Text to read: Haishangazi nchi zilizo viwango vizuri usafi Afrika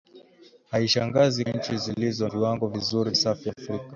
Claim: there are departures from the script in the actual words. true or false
false